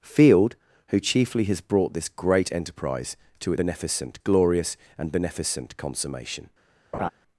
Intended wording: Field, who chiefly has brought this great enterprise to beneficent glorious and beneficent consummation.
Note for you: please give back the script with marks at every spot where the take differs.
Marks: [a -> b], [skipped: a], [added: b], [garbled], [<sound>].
Field, who chiefly has brought this great enterprise to beneficent glorious and beneficent consummation. [laugh]